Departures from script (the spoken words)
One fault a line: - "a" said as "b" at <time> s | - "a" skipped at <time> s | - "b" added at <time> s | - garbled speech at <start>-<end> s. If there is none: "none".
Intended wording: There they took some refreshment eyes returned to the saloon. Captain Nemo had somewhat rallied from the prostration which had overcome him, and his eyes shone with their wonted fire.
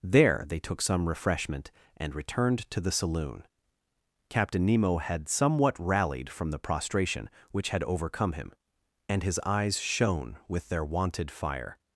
- "eyes" said as "and" at 2.0 s